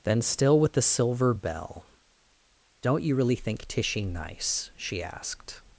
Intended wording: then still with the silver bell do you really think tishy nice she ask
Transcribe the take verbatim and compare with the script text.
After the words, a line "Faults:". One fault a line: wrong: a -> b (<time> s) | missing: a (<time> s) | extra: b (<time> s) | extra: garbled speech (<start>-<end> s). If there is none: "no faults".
then still with the silver bell don't you really think tishy nice she asked
Faults:
wrong: do -> don't (2.8 s)
wrong: ask -> asked (5.0 s)